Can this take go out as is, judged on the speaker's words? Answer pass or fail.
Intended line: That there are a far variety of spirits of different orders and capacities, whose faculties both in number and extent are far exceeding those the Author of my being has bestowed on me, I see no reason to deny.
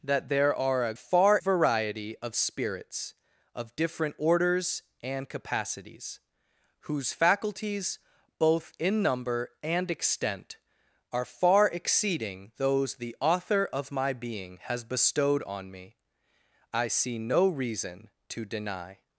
pass